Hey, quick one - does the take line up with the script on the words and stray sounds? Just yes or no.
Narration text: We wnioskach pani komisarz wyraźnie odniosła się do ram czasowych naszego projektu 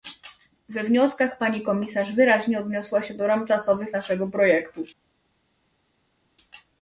yes